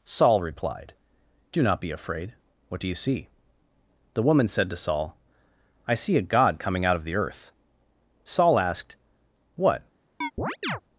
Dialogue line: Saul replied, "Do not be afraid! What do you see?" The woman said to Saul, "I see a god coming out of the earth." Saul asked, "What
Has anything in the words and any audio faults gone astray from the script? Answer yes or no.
yes